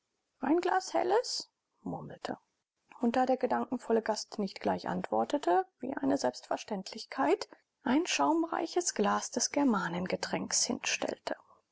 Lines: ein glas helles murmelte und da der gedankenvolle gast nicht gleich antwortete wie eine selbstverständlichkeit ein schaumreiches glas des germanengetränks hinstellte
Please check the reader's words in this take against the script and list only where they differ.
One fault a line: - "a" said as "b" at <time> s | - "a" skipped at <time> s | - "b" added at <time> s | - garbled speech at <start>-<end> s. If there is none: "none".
none